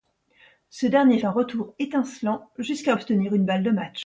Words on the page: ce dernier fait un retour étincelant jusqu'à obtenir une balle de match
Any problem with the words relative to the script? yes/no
yes